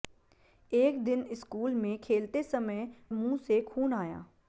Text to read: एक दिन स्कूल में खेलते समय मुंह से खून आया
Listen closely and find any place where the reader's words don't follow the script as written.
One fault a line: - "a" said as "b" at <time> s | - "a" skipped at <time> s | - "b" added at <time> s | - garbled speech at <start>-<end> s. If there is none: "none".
none